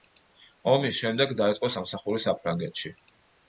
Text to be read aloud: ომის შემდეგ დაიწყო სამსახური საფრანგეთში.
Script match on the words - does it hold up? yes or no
yes